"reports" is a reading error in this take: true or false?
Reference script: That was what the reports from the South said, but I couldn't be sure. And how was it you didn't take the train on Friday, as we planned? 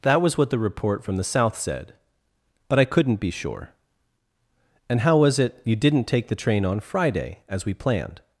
true